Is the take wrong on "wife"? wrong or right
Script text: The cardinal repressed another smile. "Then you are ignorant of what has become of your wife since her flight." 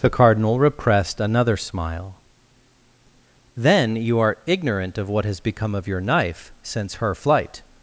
wrong